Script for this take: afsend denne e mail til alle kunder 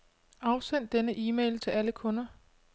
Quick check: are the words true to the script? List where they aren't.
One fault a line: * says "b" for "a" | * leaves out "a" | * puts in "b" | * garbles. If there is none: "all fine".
all fine